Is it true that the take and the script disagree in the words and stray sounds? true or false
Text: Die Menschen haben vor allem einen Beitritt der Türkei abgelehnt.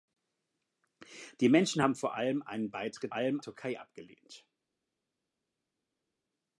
true